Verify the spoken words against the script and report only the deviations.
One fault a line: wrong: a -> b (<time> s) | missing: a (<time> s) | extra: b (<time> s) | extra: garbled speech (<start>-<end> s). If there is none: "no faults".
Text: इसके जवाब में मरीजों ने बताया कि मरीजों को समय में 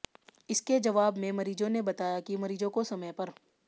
wrong: में -> पर (3.1 s)